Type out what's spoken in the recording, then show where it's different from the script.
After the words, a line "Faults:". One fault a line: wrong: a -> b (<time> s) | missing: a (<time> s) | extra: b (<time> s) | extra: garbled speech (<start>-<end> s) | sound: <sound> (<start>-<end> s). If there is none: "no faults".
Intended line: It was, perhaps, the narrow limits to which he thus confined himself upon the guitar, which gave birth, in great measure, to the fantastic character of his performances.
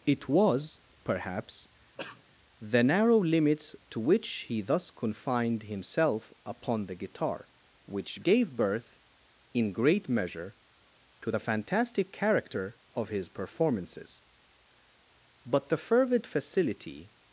It was, perhaps, the narrow limits to which he thus confined himself upon the guitar, which gave birth, in great measure, to the fantastic character of his performances. But the fervid facility
Faults:
sound: cough (2.0-2.2 s)
extra: But the fervid facility (15.4 s)